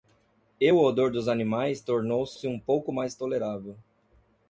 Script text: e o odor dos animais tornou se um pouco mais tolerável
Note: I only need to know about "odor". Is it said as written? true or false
true